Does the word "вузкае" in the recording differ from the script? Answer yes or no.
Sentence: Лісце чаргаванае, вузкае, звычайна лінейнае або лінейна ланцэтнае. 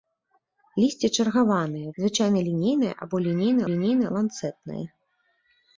yes